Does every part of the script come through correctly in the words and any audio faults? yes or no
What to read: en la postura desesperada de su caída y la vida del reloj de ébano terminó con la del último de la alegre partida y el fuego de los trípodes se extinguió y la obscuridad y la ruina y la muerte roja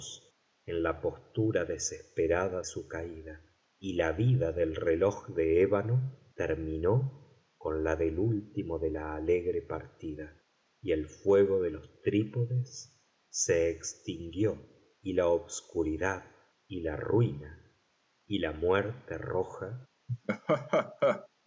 no